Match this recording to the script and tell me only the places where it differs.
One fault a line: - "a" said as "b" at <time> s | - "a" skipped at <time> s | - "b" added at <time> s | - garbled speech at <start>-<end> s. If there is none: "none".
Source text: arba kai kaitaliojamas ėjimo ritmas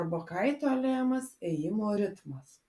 - "kai" skipped at 0.2 s